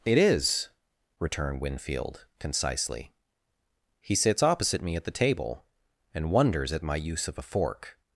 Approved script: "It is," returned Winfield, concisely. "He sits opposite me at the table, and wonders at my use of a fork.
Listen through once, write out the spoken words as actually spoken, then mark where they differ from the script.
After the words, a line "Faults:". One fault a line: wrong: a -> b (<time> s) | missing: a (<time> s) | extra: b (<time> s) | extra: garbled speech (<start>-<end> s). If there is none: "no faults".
"It is," returned Winfield, concisely. "He sits opposite me at the table, and wonders at my use of a fork.
Faults:
no faults